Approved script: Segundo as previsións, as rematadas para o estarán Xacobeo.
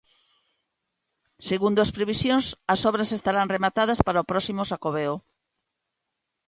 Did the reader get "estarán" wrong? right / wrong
wrong